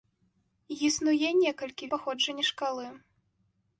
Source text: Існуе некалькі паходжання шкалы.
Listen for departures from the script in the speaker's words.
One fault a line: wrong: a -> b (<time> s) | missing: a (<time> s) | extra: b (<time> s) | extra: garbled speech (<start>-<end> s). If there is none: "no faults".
no faults